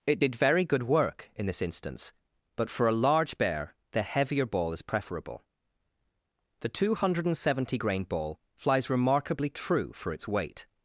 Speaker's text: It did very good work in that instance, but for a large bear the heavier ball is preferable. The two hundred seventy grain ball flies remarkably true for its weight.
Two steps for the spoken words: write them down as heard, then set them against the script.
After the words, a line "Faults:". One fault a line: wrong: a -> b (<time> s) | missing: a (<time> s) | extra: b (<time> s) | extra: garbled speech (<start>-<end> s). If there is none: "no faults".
It did very good work in this instance, but for a large bear the heavier ball is preferable. The two hundred seventy grain ball flies remarkably true for its weight.
Faults:
wrong: that -> this (1.4 s)